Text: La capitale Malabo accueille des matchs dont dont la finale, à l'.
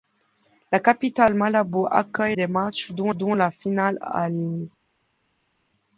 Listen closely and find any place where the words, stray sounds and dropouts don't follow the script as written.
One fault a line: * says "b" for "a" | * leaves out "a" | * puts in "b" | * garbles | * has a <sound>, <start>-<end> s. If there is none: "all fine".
all fine